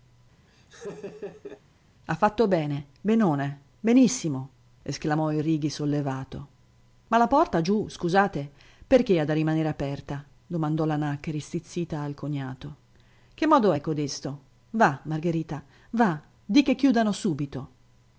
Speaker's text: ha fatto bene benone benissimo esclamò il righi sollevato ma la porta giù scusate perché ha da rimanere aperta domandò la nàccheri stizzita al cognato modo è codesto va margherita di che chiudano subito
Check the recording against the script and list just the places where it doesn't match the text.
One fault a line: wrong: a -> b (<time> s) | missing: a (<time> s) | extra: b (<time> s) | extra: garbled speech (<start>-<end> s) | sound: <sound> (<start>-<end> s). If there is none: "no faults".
sound: laugh (0.5-1.6 s)
extra: che (13.3 s)
extra: va (15.9 s)